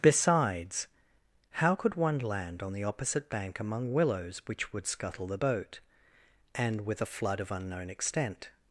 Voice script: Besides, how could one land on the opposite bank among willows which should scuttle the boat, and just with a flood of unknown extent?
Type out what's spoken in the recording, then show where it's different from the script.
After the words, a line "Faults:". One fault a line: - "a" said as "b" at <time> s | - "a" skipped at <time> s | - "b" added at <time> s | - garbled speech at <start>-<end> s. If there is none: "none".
Besides, how could one land on the opposite bank among willows which would scuttle the boat, and with a flood of unknown extent?
Faults:
- "should" said as "would" at 4.7 s
- "just" skipped at 6.8 s